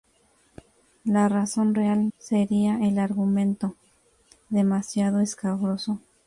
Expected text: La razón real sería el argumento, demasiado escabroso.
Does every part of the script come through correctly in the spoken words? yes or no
yes